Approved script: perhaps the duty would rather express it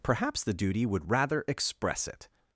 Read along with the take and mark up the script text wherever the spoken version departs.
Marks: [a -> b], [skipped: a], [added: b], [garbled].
perhaps the duty would rather express it